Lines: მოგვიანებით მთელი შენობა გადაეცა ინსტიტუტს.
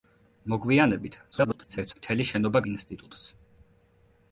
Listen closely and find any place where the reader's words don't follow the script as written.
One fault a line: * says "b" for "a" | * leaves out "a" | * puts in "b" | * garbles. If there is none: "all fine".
* garbles
* leaves out "გადაეცა"